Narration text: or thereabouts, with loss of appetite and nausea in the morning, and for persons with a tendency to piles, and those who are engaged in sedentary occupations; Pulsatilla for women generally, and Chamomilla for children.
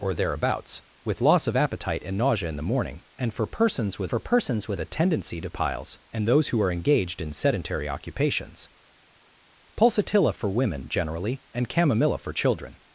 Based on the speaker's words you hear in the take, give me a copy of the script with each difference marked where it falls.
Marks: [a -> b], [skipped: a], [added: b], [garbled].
or thereabouts, with loss of appetite and nausea in the morning, and for persons with [added: for persons with] a tendency to piles, and those who are engaged in sedentary occupations; Pulsatilla for women generally, and Chamomilla for children.